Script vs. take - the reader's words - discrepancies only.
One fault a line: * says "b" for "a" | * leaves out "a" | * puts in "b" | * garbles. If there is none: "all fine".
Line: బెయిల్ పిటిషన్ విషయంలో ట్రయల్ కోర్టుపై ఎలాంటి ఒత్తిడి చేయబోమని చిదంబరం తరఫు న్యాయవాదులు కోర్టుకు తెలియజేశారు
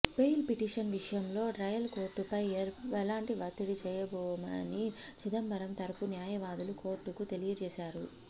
all fine